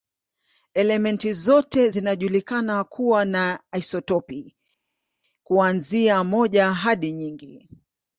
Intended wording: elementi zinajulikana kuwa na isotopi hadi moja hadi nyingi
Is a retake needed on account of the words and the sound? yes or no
yes